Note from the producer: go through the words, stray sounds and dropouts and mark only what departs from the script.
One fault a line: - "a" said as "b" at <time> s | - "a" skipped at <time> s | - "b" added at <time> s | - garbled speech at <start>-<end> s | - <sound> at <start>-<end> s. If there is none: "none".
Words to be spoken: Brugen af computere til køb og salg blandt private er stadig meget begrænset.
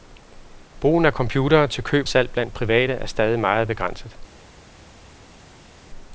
- "og" skipped at 2.1 s